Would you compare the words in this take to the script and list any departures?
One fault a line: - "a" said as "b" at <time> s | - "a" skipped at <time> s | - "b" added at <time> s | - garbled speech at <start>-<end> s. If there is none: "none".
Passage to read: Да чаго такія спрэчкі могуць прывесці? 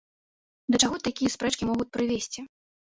none